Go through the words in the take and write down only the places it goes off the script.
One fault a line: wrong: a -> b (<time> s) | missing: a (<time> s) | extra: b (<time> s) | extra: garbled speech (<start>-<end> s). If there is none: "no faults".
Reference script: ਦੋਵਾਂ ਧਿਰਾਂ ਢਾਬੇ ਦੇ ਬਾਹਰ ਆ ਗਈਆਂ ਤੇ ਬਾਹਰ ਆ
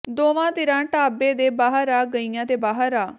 no faults